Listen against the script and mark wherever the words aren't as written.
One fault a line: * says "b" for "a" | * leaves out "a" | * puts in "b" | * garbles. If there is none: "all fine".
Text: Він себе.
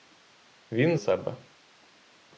all fine